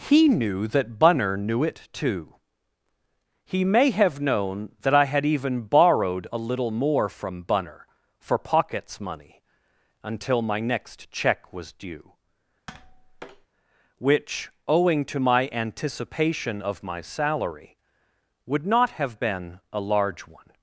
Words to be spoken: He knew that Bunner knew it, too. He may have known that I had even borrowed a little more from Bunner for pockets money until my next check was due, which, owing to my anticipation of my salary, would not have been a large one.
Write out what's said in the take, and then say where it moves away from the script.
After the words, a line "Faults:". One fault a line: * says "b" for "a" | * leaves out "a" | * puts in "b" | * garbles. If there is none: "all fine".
He knew that Bunner knew it, too. He may have known that I had even borrowed a little more from Bunner for pockets money until my next check was due, which, owing to my anticipation of my salary, would not have been a large one.
Faults:
all fine